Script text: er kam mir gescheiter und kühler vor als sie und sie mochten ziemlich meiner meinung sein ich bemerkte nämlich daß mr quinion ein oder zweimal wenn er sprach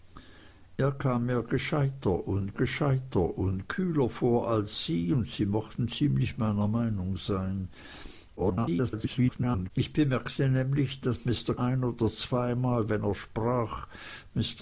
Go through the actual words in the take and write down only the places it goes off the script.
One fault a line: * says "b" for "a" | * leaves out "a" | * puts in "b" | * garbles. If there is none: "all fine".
* puts in "gescheiter und"
* garbles
* leaves out "quinion"